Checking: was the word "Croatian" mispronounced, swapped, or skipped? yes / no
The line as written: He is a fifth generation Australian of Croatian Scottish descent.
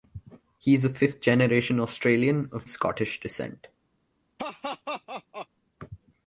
yes